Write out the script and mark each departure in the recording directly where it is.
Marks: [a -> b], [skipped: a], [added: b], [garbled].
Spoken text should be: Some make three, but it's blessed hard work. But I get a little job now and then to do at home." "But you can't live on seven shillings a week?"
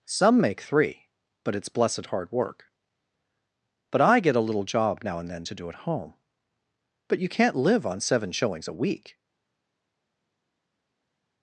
Some make three, but it's blessed hard work. But I get a little job now and then to do at home." "But you can't live on seven shillings a week?"